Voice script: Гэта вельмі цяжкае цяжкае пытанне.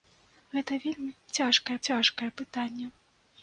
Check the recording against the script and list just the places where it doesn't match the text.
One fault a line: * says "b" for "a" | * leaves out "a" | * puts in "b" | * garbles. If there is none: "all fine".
all fine